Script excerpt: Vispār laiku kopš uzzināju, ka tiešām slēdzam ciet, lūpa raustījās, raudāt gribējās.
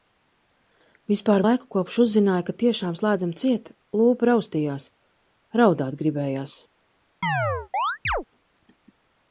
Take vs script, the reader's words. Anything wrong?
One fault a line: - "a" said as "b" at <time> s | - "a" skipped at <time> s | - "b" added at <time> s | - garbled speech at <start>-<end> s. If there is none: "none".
none